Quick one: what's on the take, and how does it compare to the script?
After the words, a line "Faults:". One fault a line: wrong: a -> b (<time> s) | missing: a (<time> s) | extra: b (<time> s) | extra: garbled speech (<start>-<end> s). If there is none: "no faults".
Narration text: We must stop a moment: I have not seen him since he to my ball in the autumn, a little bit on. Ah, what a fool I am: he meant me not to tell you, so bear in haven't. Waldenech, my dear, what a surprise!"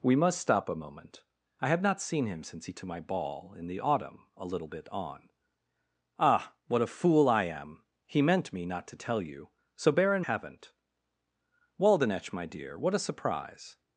We must stop a moment: I have not seen him since he to my ball in the autumn, a little bit on. Ah, what a fool I am: he meant me not to tell you, so bear in haven't. Waldenech, my dear, what a surprise!"
Faults:
no faults